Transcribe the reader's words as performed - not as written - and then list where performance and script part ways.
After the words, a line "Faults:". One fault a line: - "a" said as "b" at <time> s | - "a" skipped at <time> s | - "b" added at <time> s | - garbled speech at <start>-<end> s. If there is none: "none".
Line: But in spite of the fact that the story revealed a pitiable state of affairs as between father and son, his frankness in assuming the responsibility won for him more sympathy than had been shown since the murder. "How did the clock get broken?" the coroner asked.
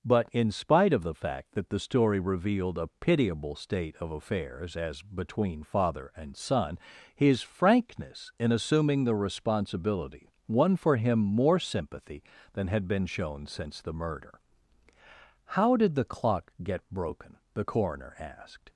But in spite of the fact that the story revealed a pitiable state of affairs as between father and son, his frankness in assuming the responsibility won for him more sympathy than had been shown since the murder. "How did the clock get broken?" the coroner asked.
Faults:
none